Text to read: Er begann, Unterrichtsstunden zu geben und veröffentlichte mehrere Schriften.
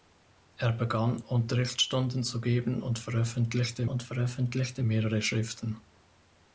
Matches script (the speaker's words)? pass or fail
fail